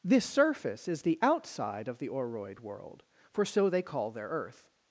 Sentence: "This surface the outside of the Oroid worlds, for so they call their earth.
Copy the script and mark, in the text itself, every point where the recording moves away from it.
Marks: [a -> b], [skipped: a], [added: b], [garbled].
"This surface [added: is] the outside of the Oroid [worlds, -> world] for so they call their earth.